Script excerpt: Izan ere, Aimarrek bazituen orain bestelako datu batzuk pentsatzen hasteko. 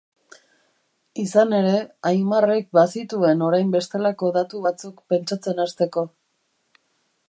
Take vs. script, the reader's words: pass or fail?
pass